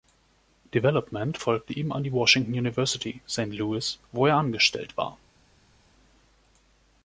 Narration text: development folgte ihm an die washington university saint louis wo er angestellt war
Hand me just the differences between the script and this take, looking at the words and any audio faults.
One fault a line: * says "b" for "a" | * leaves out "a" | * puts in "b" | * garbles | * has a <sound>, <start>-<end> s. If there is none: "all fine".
all fine